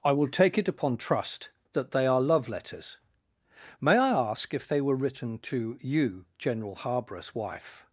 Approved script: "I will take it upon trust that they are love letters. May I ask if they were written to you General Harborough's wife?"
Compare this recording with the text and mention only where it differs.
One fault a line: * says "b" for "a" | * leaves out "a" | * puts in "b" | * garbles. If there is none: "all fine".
all fine